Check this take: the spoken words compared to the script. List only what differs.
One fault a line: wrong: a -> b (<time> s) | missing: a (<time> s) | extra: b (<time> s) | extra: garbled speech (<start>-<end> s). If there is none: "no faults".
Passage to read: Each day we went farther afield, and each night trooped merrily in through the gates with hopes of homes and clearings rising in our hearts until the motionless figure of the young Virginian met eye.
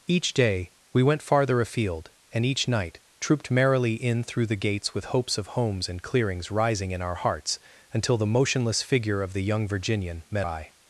no faults